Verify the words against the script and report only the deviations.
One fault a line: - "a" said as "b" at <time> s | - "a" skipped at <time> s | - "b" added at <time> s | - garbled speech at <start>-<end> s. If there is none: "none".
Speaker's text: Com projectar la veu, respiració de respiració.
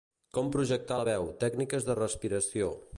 - "respiració" said as "tècniques" at 1.4 s